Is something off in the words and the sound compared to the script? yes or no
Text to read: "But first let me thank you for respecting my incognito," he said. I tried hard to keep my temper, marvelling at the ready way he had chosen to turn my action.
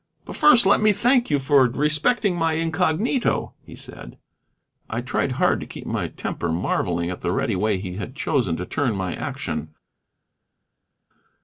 no